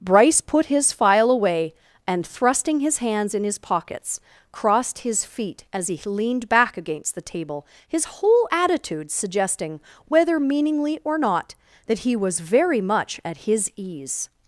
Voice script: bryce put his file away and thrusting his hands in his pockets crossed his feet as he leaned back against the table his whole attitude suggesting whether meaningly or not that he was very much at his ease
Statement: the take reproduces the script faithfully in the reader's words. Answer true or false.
true